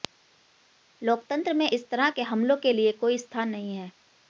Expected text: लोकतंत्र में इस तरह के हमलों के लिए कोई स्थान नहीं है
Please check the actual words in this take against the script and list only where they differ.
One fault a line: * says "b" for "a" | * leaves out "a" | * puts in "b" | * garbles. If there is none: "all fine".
all fine